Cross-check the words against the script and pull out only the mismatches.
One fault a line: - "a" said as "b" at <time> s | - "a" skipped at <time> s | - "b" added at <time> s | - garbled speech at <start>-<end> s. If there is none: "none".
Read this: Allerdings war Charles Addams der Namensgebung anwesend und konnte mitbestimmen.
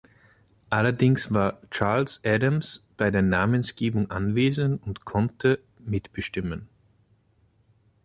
- "bei" added at 3.0 s